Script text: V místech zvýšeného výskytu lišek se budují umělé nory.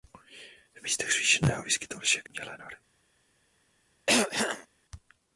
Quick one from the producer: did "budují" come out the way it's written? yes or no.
no